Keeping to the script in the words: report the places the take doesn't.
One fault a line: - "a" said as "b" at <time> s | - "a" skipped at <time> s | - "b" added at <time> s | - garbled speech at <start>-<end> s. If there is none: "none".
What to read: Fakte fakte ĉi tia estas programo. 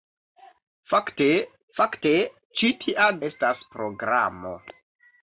none